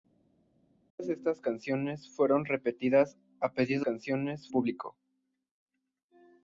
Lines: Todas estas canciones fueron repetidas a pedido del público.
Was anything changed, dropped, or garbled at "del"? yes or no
yes